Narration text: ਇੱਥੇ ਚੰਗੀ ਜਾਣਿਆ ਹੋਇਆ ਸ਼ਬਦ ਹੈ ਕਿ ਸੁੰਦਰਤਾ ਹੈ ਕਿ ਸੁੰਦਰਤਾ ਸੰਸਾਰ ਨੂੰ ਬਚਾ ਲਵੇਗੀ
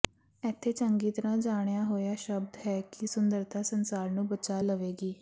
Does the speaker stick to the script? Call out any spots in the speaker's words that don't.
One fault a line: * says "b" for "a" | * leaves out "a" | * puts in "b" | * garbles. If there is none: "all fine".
* puts in "ਤਰ੍ਹਾਂ"
* leaves out "ਹੈ ਕਿ ਸੁੰਦਰਤਾ"